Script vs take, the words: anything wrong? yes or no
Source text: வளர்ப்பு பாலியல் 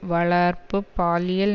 no